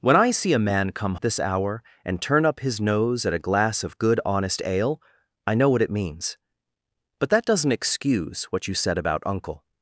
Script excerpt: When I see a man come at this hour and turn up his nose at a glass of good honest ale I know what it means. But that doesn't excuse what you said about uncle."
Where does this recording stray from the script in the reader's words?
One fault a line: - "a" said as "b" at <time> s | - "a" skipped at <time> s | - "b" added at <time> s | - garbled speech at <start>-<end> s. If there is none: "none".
none